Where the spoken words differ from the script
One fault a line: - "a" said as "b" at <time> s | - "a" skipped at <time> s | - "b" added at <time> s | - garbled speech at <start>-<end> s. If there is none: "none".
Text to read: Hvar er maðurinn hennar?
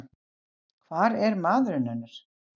none